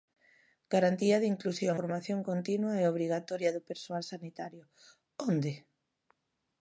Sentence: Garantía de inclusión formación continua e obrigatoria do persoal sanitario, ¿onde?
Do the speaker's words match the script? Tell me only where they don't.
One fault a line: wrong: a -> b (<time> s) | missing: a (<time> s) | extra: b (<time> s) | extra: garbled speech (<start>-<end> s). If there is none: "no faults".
no faults